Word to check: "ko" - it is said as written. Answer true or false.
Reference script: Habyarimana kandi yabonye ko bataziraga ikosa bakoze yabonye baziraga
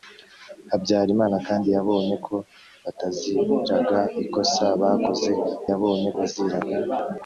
true